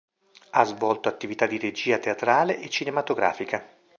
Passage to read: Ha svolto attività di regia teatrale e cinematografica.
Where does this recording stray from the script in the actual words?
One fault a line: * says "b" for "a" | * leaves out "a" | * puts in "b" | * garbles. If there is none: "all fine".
all fine